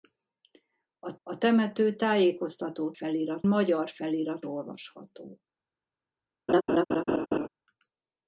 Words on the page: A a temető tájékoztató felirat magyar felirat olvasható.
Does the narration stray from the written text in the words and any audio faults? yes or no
yes